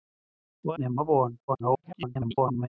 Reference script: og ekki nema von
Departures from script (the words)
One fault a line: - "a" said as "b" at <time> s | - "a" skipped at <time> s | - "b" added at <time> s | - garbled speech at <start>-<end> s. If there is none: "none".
- "ekki" skipped at 0.8 s
- garbled speech at 1.5-2.7 s